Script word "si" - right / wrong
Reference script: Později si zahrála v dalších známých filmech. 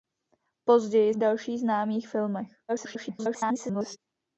wrong